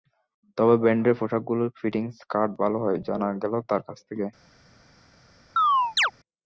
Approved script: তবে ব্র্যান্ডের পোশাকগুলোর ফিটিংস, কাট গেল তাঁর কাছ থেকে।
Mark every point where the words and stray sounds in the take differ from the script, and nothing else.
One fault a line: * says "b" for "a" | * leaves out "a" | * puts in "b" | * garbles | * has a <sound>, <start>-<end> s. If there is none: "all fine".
* puts in "ভালো হয় জানা"
* has a chirp, 5.6-6.1 s